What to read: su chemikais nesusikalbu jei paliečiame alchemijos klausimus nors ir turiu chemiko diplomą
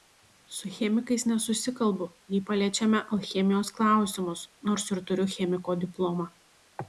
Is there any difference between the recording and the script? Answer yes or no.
no